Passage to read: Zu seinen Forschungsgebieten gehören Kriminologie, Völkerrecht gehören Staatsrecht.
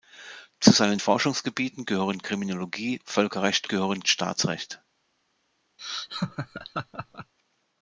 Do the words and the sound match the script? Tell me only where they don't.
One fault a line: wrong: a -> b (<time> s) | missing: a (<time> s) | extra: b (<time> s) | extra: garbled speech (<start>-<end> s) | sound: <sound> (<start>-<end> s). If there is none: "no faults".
sound: laugh (5.8-7.3 s)